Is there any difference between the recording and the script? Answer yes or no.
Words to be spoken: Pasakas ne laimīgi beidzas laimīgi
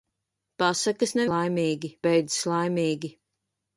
no